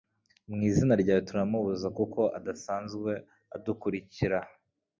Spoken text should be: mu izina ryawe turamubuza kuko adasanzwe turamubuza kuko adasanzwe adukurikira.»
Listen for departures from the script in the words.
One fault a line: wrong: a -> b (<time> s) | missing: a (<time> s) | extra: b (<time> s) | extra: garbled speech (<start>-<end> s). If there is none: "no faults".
missing: turamubuza kuko adasanzwe (3.1 s)